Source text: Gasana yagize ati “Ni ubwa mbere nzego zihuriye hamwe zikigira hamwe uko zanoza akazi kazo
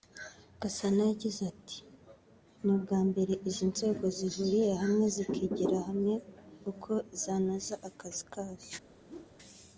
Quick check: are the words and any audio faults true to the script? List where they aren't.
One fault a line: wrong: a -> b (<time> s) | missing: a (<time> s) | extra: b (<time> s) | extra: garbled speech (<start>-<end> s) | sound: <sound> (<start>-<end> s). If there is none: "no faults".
extra: izi (3.5 s)
sound: whoosh (9.1-9.4 s)